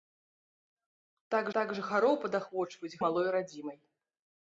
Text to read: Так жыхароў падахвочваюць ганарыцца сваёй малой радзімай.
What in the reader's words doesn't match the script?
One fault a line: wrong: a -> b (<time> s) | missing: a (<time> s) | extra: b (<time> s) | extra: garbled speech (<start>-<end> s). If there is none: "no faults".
extra: так (1.6 s)
missing: ганарыцца сваёй (3.0 s)